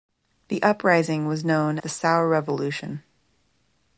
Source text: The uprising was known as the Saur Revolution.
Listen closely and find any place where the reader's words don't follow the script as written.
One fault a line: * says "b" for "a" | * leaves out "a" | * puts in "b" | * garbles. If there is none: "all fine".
* leaves out "as"